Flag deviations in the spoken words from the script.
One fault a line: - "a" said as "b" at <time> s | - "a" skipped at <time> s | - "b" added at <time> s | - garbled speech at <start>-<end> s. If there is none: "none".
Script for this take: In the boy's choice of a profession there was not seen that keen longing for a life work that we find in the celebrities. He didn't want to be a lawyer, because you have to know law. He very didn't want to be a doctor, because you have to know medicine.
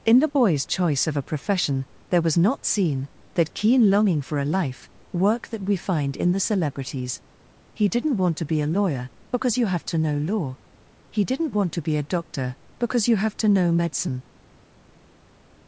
- "very" skipped at 11.3 s